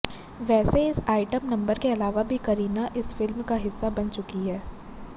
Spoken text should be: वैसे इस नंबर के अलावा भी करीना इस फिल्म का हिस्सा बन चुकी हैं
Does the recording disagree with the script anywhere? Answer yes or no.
yes